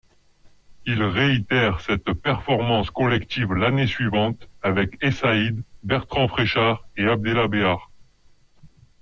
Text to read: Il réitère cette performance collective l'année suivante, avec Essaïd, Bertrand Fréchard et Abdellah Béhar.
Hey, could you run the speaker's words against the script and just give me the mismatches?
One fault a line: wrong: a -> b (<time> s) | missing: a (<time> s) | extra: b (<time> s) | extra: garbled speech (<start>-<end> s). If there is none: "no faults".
no faults